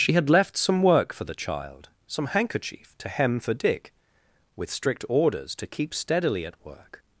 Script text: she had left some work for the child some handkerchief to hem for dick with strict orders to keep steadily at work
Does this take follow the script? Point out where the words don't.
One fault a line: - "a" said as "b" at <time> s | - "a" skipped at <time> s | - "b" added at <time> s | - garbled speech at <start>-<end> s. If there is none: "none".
none